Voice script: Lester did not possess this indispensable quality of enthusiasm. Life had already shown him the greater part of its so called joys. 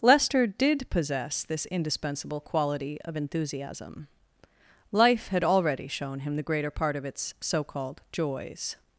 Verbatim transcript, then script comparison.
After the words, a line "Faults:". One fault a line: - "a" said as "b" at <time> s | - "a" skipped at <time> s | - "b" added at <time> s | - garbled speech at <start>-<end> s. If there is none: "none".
Lester did possess this indispensable quality of enthusiasm. Life had already shown him the greater part of its so called joys.
Faults:
- "not" skipped at 0.9 s